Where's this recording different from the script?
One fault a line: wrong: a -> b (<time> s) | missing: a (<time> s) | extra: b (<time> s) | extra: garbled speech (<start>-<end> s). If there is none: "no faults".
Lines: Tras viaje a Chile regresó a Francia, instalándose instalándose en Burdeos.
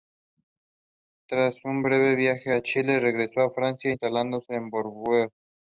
extra: un breve (1.6 s)
missing: instalándose (4.5 s)